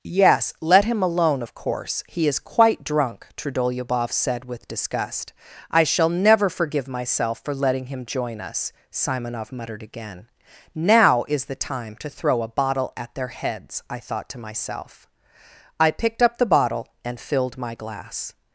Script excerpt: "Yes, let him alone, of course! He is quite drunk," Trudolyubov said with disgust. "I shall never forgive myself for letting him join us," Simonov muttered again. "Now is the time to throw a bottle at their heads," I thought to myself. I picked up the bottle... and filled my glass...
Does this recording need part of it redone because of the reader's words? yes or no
no